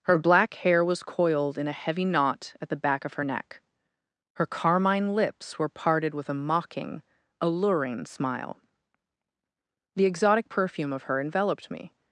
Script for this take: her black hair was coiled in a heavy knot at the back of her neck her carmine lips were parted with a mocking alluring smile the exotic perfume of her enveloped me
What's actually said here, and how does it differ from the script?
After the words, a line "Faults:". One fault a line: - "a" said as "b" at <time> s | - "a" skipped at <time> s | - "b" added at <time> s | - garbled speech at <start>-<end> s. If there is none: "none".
her black hair was coiled in a heavy knot at the back of her neck her carmine lips were parted with a mocking alluring smile the exotic perfume of her enveloped me
Faults:
none